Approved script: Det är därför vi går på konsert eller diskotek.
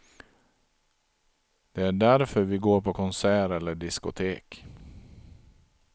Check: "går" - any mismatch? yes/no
no